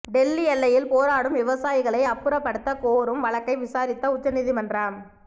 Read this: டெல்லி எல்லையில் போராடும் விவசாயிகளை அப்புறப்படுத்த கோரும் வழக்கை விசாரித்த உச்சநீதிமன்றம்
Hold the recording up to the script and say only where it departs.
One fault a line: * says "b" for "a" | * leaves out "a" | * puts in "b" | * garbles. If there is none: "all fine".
all fine